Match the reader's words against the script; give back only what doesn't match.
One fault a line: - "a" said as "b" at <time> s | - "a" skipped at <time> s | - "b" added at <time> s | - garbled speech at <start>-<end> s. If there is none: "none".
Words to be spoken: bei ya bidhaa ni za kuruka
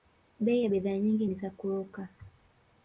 - "nyingi" added at 1.0 s